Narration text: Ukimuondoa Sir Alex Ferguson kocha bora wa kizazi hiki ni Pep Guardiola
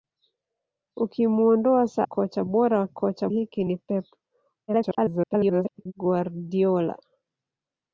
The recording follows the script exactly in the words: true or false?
false